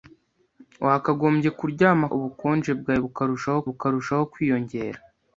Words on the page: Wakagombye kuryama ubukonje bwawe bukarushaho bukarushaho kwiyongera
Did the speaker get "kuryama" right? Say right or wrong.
right